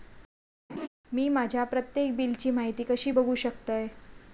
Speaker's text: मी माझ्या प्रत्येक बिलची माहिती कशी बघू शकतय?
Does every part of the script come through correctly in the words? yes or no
yes